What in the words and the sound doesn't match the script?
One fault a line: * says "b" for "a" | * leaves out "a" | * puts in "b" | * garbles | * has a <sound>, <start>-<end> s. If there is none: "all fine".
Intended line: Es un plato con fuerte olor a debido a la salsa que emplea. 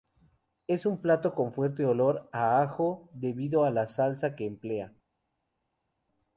* puts in "ajo"